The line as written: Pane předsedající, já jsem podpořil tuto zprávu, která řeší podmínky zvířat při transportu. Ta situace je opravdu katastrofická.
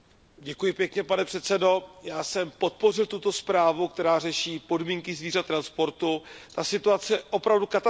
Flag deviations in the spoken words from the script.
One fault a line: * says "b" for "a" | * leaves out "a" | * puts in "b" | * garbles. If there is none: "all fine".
* leaves out "při"